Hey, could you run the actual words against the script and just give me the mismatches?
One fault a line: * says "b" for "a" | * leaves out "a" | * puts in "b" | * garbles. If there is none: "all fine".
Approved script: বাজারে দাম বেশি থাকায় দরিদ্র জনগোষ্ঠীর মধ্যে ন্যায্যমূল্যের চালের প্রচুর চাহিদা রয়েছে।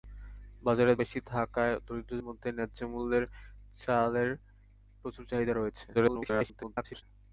* leaves out "দাম"
* leaves out "জনগোষ্ঠীর"
* garbles